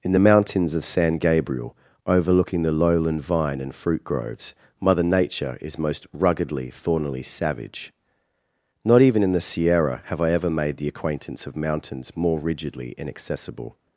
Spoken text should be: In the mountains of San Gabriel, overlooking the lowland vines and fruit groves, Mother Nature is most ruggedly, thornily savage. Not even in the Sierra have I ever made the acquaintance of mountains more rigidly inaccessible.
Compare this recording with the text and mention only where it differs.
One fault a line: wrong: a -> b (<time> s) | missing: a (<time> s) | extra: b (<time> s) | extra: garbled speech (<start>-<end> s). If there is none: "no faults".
wrong: vines -> vine (3.2 s)